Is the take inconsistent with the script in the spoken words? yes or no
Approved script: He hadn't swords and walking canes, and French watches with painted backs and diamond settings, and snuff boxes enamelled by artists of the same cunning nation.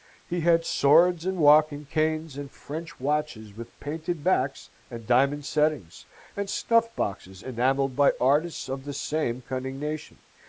yes